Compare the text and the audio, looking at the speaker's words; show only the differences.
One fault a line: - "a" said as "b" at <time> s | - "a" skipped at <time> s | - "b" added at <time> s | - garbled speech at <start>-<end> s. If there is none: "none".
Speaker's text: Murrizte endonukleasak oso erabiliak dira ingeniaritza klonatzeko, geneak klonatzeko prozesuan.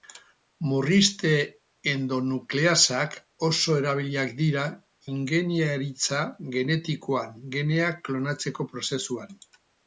- "klonatzeko" said as "genetikoan" at 6.5 s